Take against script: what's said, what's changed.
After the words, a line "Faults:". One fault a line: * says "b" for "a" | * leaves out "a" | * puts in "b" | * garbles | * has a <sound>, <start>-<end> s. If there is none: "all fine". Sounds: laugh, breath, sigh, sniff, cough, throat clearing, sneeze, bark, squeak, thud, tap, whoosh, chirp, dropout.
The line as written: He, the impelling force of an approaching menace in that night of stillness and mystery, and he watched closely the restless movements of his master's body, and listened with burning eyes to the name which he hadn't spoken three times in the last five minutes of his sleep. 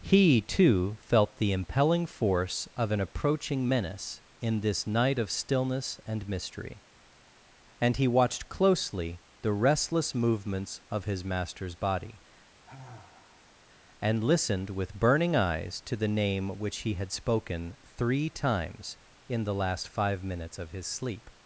He, too, felt the impelling force of an approaching menace in this night of stillness and mystery, and he watched closely the restless movements of his master's body, and listened with burning eyes to the name which he had spoken three times in the last five minutes of his sleep.
Faults:
* puts in "too felt"
* says "this" for "that"
* has a sigh, 12.6-13.6 s
* says "had" for "hadn't"